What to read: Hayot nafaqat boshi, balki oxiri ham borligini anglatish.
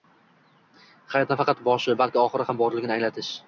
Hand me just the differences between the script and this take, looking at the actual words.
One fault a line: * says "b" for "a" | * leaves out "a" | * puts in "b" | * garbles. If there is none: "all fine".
all fine